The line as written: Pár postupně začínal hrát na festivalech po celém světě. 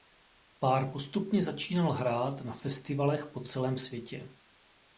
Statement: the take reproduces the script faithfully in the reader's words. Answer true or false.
true